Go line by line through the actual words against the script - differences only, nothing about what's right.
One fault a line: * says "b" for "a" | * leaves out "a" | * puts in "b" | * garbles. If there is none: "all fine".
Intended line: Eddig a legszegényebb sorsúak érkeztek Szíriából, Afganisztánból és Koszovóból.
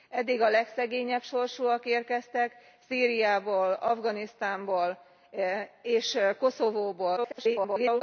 * garbles